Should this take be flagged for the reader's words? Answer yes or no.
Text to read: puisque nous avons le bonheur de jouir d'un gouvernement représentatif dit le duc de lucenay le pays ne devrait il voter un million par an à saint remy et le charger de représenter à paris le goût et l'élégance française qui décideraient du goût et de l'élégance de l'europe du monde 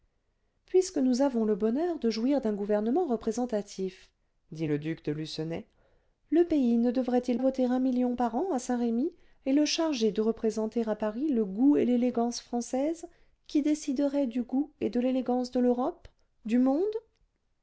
no